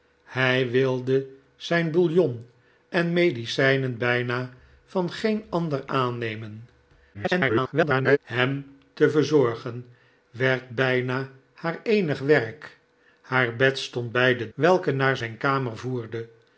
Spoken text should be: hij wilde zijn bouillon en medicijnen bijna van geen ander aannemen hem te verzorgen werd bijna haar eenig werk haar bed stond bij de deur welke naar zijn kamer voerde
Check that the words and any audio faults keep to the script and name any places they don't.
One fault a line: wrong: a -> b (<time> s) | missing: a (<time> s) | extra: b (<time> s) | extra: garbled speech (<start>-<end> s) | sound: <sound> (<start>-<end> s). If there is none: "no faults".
extra: garbled speech (7.1-8.2 s)
missing: deur (14.5 s)